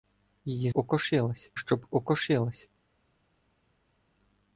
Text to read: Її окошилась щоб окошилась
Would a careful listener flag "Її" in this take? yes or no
no